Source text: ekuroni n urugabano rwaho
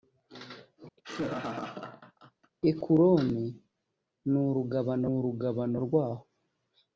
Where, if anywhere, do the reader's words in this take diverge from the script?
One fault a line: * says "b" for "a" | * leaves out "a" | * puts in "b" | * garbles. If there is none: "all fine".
* puts in "urugabano"